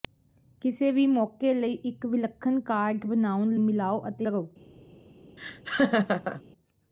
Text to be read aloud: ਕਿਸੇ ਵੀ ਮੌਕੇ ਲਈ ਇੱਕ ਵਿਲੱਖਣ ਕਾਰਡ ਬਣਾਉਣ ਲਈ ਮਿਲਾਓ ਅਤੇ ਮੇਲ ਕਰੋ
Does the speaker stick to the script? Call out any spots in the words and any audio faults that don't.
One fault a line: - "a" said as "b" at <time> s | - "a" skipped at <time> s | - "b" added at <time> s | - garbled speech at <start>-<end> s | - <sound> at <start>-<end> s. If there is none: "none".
- "ਲਈ" skipped at 3.5 s
- "ਮੇਲ" skipped at 4.3 s
- laugh at 5.4-6.4 s